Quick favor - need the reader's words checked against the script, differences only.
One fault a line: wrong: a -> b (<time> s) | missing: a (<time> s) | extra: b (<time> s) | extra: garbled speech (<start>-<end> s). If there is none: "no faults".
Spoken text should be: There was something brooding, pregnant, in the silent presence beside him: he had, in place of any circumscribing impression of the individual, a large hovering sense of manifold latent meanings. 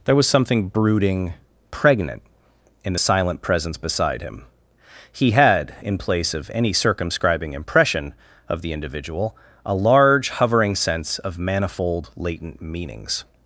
no faults